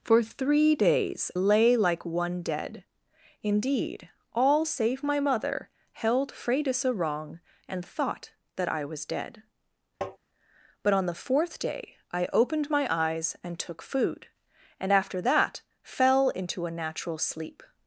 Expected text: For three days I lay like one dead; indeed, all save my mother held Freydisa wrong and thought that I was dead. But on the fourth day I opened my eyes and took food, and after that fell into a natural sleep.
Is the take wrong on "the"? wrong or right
right